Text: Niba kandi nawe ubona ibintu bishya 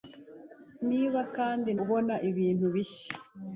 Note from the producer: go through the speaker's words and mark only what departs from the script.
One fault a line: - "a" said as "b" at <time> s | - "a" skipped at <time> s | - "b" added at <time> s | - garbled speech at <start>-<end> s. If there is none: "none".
- "nawe" skipped at 1.7 s